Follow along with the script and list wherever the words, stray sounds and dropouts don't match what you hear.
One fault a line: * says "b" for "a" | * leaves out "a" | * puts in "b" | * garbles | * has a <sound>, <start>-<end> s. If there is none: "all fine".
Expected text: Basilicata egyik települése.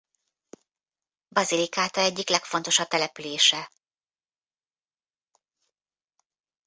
* puts in "legfontosabb"